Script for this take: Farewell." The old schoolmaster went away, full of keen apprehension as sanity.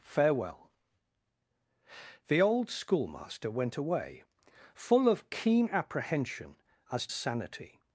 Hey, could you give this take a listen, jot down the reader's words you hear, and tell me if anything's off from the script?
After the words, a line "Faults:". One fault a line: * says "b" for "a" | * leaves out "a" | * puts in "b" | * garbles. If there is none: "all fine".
Farewell." The old schoolmaster went away, full of keen apprehension as sanity.
Faults:
all fine